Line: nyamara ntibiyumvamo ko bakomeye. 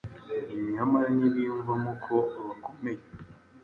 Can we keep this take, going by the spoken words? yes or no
yes